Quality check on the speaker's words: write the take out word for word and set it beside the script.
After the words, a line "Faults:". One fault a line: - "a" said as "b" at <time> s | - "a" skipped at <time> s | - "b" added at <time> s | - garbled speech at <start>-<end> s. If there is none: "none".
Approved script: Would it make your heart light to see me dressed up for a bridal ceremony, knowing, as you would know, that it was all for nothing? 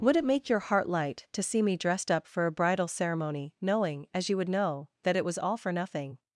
Would it make your heart light to see me dressed up for a bridal ceremony, knowing, as you would know, that it was all for nothing?
Faults:
none